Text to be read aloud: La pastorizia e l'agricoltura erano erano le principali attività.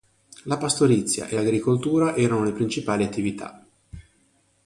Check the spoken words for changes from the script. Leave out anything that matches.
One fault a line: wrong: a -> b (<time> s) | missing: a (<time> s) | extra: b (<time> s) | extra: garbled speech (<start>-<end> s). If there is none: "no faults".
missing: erano (2.4 s)